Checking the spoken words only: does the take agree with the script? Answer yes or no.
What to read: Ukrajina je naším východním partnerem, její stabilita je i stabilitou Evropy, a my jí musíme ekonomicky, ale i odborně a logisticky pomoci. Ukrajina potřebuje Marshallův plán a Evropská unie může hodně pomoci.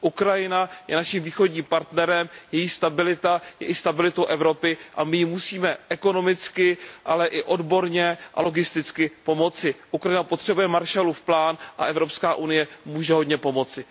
yes